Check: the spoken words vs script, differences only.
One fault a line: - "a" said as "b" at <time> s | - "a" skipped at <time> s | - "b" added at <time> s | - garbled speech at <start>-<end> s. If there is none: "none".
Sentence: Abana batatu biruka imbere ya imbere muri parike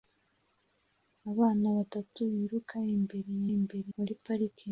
none